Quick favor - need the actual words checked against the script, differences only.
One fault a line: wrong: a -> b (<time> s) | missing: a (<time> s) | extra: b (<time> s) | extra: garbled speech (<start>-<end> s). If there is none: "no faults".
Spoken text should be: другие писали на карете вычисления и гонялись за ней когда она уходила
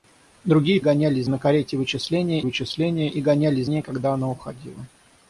wrong: писали -> гонялись (0.8 s)
extra: вычисления (2.4 s)
missing: за (3.7 s)